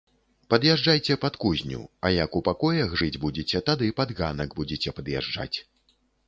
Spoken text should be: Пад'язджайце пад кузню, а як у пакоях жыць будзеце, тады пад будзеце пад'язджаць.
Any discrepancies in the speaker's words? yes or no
yes